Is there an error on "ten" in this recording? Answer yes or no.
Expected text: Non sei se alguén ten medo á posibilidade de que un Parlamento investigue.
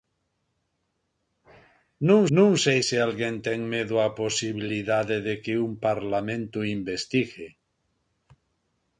no